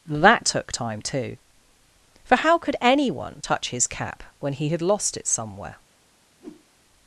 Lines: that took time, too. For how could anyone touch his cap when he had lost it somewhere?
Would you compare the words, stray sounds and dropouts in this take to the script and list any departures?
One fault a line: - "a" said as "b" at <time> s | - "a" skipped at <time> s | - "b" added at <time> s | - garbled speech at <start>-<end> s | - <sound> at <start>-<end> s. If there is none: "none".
- whoosh at 6.4-6.7 s